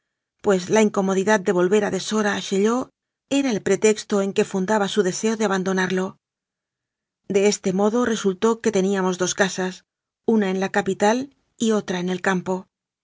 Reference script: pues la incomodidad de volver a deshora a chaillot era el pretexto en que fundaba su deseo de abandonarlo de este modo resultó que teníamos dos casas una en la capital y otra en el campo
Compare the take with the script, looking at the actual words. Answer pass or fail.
pass